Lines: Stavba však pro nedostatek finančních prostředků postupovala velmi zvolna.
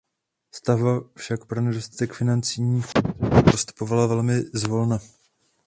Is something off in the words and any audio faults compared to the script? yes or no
yes